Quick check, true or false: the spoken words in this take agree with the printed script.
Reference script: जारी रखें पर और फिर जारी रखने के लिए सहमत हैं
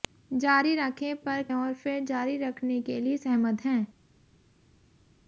true